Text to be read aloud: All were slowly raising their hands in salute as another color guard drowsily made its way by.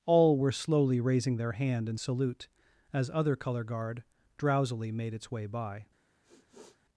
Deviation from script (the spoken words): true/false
true